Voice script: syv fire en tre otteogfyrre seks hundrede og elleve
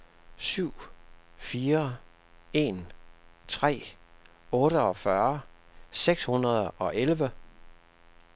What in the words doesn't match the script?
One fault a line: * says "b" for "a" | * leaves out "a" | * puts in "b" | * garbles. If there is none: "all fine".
all fine